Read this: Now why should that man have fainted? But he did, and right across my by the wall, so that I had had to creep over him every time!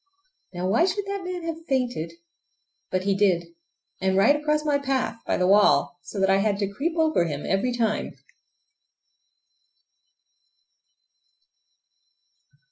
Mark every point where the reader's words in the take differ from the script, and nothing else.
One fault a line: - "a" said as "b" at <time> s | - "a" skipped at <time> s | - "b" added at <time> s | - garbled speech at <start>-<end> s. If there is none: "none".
- "path" added at 4.8 s
- "had" skipped at 6.6 s